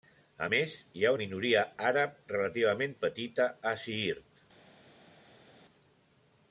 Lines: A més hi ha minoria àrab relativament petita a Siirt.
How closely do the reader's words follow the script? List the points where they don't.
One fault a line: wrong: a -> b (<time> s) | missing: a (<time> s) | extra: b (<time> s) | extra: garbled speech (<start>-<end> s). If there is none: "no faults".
no faults